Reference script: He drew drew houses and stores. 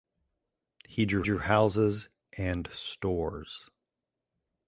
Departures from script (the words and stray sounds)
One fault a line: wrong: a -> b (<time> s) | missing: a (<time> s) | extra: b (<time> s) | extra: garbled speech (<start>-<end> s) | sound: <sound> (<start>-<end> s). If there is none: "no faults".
no faults